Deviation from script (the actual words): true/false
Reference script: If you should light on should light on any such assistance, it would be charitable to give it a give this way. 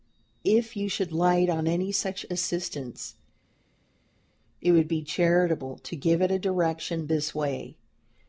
true